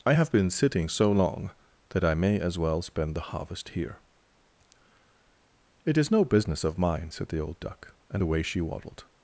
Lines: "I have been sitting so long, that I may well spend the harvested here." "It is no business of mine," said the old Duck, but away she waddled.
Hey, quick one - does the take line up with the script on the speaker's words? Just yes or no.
no